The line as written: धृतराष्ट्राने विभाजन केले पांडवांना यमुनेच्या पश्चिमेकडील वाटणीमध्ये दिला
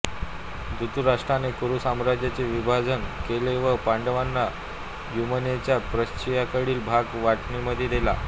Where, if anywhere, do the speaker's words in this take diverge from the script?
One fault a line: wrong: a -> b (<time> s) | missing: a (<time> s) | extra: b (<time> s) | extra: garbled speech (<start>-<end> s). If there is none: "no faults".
extra: कुरू साम्राज्याचे (1.6 s)
extra: व (3.6 s)
extra: भाग (6.9 s)